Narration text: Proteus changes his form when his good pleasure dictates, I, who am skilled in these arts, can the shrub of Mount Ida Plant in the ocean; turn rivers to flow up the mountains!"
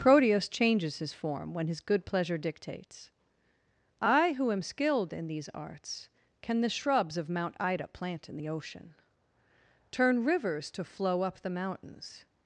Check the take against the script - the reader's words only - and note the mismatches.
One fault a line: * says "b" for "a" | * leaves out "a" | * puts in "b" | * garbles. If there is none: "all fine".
* says "shrubs" for "shrub"